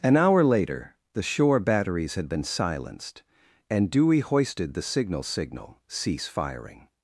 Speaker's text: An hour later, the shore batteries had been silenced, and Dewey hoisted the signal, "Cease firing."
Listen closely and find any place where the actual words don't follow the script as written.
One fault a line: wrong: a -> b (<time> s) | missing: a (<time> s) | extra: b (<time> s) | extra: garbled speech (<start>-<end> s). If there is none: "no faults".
extra: signal (5.2 s)